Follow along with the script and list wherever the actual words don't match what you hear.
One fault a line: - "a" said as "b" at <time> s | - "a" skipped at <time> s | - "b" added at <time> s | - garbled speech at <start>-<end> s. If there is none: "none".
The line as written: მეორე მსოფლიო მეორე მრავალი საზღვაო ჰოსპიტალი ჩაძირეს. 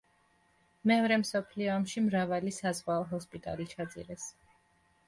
- "მეორე" said as "ომში" at 1.8 s